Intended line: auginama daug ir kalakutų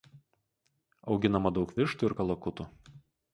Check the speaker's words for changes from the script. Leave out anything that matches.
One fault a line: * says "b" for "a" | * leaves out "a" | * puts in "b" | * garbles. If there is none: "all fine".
* puts in "vištų"